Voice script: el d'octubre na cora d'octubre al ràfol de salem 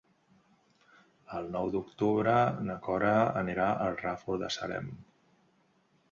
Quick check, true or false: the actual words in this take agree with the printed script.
false